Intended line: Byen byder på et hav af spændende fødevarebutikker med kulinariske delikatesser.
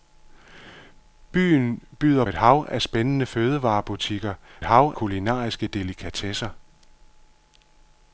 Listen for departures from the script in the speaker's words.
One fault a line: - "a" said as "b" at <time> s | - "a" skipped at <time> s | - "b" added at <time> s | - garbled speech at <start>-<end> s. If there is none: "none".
- "på" skipped at 2.2 s
- "med" said as "hav" at 4.6 s